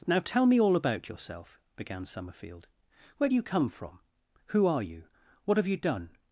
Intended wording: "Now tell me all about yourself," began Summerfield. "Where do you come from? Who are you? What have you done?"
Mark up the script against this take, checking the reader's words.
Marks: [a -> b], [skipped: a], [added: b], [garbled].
"Now tell me all about yourself," began Summerfield. "Where do you come from? Who are you? What have you done?"